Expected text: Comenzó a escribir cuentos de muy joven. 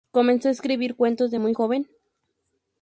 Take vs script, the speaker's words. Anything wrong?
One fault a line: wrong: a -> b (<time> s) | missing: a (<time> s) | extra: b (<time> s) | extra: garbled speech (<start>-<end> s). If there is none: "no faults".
no faults